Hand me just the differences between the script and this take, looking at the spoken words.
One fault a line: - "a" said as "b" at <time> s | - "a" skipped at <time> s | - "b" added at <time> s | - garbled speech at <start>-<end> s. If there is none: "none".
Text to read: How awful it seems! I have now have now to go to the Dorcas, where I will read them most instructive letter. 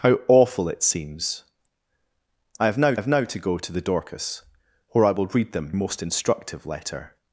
none